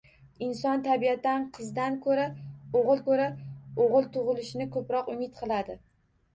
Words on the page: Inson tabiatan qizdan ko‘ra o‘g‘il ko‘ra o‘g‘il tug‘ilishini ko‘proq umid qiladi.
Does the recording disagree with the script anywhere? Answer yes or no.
no